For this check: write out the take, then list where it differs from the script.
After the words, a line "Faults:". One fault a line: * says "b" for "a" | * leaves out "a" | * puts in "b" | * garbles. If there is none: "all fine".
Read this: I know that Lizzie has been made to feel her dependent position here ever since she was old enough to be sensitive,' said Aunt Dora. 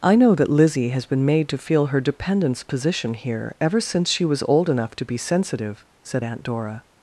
I know that Lizzie has been made to feel her dependents position here ever since she was old enough to be sensitive,' said Aunt Dora.
Faults:
* says "dependents" for "dependent"